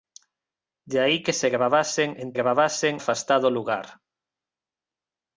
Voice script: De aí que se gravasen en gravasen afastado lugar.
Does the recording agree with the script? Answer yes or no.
yes